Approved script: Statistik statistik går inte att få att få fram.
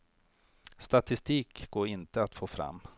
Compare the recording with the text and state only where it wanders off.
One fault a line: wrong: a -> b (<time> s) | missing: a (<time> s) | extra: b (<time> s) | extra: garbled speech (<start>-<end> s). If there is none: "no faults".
missing: statistik (1.7 s)
missing: att få (2.5 s)